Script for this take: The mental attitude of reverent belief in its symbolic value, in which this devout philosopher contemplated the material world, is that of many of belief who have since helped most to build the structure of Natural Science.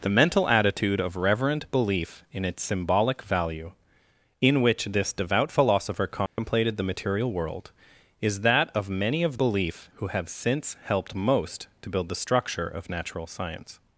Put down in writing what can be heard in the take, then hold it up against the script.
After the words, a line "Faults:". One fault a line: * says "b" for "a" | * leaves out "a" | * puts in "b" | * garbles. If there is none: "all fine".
The mental attitude of reverent belief in its symbolic value, in which this devout philosopher contemplated the material world, is that of many of belief who have since helped most to build the structure of Natural Science.
Faults:
all fine